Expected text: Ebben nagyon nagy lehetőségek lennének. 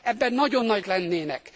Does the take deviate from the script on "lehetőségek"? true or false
true